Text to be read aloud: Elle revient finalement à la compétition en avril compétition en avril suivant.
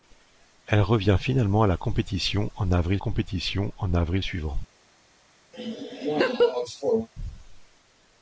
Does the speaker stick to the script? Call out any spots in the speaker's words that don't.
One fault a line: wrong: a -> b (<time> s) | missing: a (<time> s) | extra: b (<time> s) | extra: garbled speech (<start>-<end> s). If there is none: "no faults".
no faults